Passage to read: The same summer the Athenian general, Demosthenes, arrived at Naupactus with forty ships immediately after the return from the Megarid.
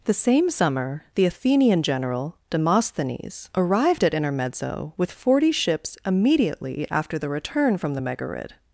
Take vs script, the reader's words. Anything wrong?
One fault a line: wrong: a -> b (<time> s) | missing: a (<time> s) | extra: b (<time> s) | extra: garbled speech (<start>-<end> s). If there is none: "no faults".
wrong: Naupactus -> Intermezzo (4.2 s)